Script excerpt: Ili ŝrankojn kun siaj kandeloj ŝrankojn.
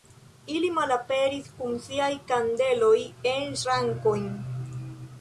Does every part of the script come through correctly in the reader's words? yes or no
no